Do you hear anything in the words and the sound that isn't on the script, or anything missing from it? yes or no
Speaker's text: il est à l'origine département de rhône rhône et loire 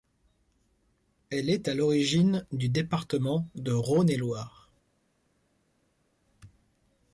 yes